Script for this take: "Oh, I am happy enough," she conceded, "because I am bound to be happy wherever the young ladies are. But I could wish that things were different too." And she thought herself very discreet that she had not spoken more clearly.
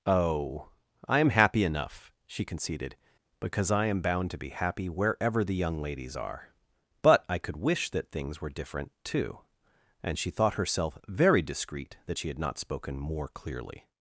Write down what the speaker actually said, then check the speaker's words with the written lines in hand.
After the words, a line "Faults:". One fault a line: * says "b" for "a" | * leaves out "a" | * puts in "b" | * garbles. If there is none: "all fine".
"Oh, I am happy enough," she conceded, "because I am bound to be happy wherever the young ladies are. But I could wish that things were different too." And she thought herself very discreet that she had not spoken more clearly.
Faults:
all fine